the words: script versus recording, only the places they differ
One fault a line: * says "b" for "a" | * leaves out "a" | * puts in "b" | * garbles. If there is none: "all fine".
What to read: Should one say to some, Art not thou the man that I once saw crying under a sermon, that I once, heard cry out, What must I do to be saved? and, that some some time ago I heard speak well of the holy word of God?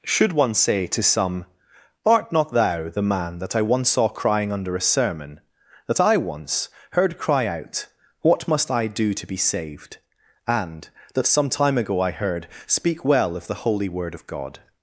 * leaves out "some"